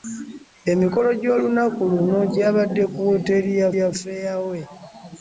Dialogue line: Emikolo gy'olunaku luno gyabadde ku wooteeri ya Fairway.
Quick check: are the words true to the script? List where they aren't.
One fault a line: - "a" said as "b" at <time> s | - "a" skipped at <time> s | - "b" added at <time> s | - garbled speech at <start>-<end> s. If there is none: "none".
- "ya" added at 3.8 s